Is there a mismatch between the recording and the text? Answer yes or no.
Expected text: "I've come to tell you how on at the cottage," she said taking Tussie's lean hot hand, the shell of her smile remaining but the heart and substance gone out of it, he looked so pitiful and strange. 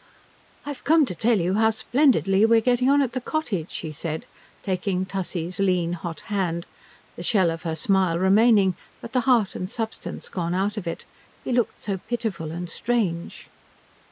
yes